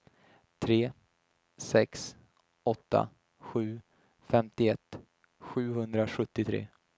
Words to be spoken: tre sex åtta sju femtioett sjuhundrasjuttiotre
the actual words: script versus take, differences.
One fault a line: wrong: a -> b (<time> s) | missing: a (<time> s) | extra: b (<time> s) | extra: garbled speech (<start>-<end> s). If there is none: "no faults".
no faults